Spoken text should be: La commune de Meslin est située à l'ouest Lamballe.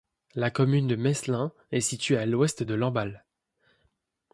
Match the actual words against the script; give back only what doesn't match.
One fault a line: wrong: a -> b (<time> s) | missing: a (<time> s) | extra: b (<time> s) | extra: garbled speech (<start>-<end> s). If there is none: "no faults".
extra: de (2.6 s)